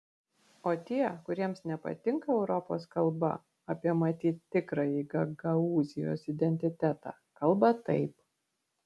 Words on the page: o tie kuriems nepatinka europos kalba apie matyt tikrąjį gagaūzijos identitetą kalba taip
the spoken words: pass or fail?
pass